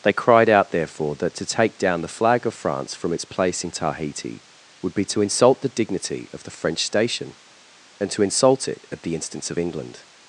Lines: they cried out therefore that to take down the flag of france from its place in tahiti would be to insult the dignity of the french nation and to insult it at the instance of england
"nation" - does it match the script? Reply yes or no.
no